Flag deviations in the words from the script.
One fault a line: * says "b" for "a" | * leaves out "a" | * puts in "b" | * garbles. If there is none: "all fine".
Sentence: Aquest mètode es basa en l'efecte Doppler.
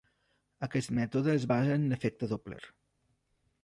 all fine